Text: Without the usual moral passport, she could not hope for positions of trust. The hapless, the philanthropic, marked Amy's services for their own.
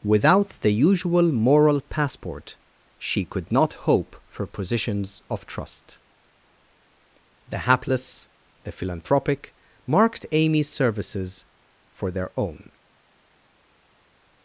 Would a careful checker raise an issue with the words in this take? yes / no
no